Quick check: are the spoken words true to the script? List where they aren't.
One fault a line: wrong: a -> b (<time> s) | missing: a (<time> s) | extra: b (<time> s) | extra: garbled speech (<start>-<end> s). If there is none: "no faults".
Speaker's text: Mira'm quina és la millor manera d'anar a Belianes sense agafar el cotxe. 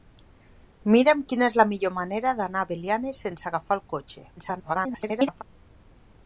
extra: garbled speech (4.4-5.4 s)